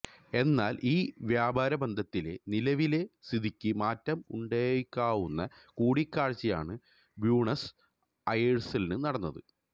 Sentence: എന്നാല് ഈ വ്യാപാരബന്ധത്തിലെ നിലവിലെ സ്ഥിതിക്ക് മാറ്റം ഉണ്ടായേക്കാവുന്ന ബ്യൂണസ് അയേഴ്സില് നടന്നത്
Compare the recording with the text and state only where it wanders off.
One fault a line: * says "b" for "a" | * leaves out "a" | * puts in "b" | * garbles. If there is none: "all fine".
* puts in "കൂടിക്കാഴ്ചയാണ്"